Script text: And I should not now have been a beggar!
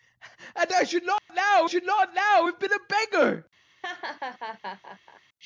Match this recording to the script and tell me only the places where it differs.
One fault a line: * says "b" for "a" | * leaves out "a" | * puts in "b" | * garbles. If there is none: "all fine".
* puts in "should not now"